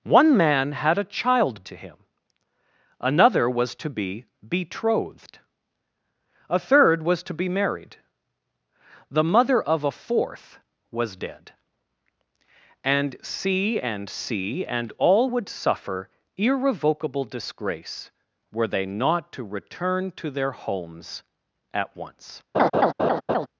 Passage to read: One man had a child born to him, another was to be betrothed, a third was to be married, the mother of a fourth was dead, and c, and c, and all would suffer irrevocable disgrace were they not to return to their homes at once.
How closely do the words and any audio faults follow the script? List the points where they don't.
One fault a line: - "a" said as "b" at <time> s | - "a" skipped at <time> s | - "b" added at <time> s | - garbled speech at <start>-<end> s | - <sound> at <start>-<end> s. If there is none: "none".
- "born" skipped at 1.6 s
- laugh at 22.5-23.5 s